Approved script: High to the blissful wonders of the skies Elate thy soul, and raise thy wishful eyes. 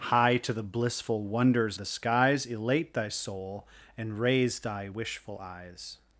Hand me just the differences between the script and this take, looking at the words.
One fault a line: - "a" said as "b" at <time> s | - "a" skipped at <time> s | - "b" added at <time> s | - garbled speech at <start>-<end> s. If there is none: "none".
- "of" skipped at 1.8 s